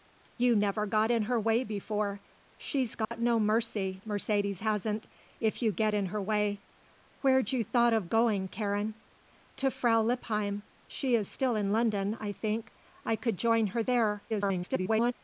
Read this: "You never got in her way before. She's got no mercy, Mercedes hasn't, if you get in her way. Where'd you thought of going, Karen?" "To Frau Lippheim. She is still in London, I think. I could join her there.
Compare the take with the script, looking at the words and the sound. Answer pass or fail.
fail